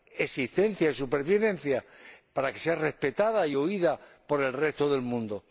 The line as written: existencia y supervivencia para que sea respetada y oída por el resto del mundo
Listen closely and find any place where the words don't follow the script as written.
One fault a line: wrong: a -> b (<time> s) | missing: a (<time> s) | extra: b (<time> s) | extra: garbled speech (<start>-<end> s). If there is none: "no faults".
no faults